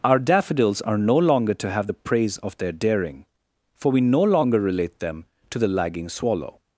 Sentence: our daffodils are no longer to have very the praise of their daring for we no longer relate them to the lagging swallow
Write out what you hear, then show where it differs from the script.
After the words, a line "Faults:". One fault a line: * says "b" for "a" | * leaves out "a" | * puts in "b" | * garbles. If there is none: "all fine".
our daffodils are no longer to have the praise of their daring for we no longer relate them to the lagging swallow
Faults:
* leaves out "very"